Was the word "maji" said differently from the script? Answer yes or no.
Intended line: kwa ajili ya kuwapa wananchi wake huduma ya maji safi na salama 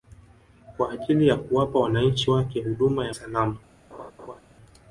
yes